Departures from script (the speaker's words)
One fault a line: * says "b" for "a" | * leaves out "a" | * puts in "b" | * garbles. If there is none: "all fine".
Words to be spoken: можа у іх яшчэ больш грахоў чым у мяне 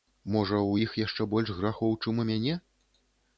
all fine